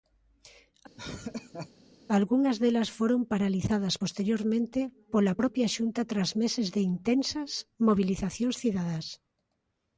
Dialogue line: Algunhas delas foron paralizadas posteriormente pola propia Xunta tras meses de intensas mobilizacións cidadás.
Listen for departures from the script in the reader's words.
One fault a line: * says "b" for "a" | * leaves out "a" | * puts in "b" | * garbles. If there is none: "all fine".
all fine